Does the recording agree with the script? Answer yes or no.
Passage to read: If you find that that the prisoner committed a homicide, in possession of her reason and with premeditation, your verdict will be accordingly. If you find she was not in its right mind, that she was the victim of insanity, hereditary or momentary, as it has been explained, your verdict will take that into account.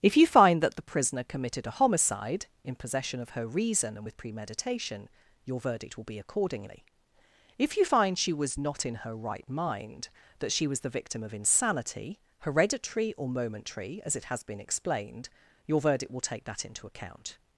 no